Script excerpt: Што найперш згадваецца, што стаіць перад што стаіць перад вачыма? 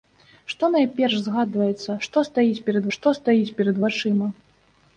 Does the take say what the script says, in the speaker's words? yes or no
yes